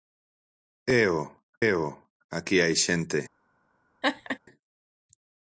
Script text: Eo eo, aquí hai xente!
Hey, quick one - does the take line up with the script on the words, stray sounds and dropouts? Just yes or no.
no